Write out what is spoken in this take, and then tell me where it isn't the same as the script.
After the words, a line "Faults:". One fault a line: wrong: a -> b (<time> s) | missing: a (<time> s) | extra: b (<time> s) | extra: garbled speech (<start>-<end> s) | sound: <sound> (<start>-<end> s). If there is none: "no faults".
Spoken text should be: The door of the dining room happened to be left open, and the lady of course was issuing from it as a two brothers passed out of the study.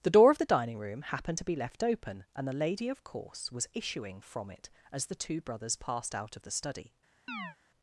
The door of the dining room happened to be left open, and the lady of course was issuing from it as the two brothers passed out of the study.
Faults:
wrong: a -> the (5.1 s)
sound: chirp (7.3-7.6 s)